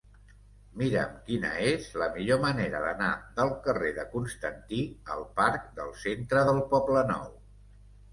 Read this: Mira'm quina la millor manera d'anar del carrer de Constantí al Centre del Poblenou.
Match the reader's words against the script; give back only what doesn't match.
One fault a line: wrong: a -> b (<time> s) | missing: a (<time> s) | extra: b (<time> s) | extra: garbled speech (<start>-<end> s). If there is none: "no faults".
extra: és (1.7 s)
extra: parc del (5.4 s)